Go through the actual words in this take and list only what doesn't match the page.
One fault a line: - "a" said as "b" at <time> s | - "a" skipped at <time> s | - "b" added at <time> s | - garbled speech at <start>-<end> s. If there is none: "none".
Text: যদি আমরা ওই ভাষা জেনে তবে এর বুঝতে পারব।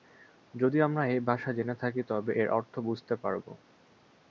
- "ওই" said as "এই" at 1.1 s
- "থাকি" added at 1.8 s
- "অর্থ" added at 2.5 s